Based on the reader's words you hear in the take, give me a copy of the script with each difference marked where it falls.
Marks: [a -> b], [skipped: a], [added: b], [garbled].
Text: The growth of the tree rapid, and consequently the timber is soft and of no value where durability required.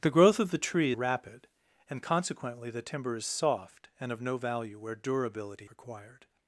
The growth of the tree rapid, and consequently the timber is soft and of no value where durability required.